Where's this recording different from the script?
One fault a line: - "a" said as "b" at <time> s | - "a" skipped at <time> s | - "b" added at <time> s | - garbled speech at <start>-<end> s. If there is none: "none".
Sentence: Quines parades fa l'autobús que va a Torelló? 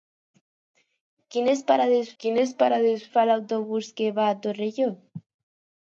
- "quines parades" added at 2.2 s